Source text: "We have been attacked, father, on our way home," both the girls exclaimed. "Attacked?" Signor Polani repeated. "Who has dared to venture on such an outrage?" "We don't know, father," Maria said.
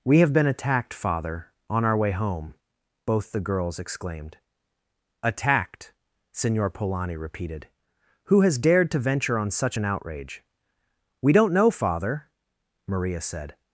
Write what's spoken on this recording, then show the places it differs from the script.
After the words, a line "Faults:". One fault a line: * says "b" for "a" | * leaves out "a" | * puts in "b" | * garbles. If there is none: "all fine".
"We have been attacked, father, on our way home," both the girls exclaimed. "Attacked?" Signor Polani repeated. "Who has dared to venture on such an outrage?" "We don't know, father," Maria said.
Faults:
all fine